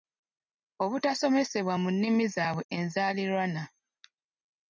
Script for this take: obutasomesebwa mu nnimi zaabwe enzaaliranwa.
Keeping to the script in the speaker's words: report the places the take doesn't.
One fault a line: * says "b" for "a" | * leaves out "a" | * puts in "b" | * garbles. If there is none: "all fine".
all fine